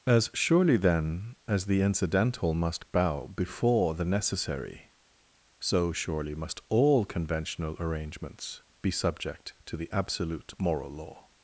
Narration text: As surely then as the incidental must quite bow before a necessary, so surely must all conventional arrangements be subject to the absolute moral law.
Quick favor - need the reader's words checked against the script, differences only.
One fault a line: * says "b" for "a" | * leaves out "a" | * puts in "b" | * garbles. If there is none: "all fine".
* leaves out "quite"
* says "the" for "a"